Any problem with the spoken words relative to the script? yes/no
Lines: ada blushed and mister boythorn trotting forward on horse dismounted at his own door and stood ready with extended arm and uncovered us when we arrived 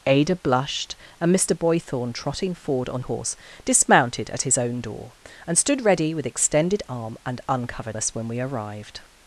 no